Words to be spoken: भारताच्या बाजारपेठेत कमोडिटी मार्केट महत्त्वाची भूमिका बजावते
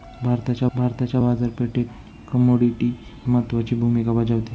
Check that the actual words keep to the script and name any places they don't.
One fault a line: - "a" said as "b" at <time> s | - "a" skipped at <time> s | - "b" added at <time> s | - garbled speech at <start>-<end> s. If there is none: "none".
- "भारताच्या" added at 0.7 s
- "मार्केट" skipped at 2.9 s